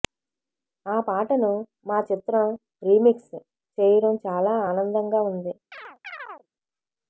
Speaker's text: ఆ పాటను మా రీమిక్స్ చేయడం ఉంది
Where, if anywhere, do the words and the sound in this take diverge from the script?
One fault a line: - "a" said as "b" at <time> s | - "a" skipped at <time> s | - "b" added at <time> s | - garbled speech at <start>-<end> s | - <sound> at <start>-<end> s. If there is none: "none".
- "చిత్రం" added at 2.0 s
- "చాలా ఆనందంగా" added at 4.2 s
- chirp at 5.7-6.5 s